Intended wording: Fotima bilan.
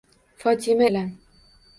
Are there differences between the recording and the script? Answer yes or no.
no